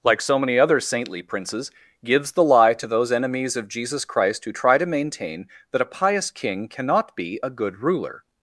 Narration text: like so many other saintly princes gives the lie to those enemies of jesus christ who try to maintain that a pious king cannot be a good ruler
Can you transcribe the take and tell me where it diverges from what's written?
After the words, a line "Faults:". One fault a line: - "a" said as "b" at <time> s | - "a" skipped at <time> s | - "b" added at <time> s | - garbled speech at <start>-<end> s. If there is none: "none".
like so many other saintly princes gives the lie to those enemies of jesus christ who try to maintain that a pious king cannot be a good ruler
Faults:
none